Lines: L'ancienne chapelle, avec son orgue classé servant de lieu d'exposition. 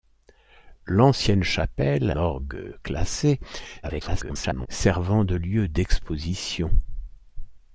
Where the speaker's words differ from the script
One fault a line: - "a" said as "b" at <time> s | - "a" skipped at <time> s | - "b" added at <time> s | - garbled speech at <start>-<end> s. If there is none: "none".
- "avec son" skipped at 2.1 s
- garbled speech at 3.8-4.7 s